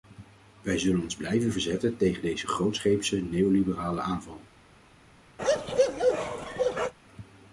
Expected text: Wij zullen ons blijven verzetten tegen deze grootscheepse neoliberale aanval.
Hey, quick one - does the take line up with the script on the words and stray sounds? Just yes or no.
no